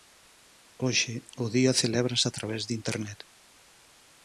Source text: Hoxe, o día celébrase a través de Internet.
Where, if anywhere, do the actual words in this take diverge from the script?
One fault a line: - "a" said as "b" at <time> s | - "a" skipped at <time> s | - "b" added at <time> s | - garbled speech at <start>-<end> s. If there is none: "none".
none